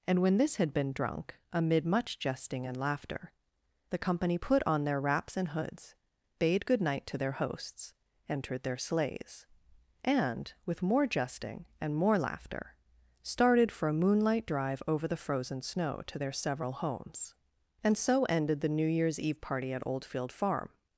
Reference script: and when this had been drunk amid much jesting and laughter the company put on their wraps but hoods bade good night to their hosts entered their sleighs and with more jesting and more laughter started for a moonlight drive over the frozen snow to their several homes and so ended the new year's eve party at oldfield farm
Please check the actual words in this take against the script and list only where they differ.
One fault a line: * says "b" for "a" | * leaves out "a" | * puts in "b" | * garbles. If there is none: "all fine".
* says "and" for "but"